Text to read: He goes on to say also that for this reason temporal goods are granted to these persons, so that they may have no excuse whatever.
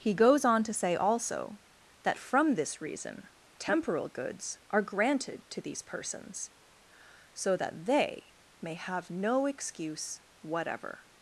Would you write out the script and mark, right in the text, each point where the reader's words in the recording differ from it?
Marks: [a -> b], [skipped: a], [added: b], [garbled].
He goes on to say also that [for -> from] this reason temporal goods are granted to these persons, so that they may have no excuse whatever.